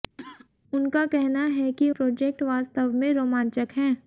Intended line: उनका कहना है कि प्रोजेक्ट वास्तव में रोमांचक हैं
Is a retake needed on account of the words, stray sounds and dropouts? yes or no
yes